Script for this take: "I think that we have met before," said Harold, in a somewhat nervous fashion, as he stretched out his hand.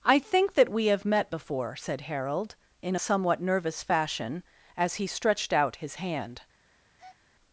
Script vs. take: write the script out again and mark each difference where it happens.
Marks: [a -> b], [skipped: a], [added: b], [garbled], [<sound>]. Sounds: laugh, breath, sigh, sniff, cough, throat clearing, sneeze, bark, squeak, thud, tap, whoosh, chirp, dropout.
"I think that we have met before," said Harold, in a somewhat nervous fashion, as he stretched out his hand. [breath]